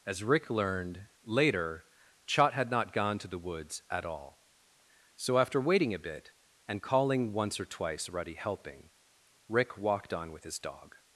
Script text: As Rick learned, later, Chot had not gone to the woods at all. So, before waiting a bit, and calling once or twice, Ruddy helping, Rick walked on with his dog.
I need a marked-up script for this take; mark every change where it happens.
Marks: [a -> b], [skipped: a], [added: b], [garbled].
As Rick learned, later, Chot had not gone to the woods at all. So, [before -> after] waiting a bit, and calling once or twice, Ruddy helping, Rick walked on with his dog.